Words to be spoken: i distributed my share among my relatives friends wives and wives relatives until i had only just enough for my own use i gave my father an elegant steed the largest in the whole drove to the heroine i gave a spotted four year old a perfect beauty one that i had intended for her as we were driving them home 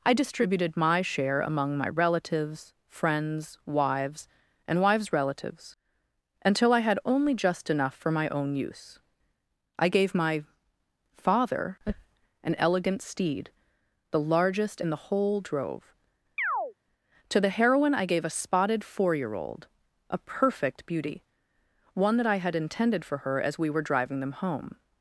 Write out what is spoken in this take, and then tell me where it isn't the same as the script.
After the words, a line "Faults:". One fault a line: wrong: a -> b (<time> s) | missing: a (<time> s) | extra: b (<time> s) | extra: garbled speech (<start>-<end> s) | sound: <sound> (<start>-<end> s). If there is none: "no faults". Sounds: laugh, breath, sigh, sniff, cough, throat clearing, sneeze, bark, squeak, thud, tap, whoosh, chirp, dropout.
i distributed my share among my relatives friends wives and wives relatives until i had only just enough for my own use i gave my father an elegant steed the largest in the whole drove to the heroine i gave a spotted four year old a perfect beauty one that i had intended for her as we were driving them home
Faults:
sound: chirp (16.4-16.7 s)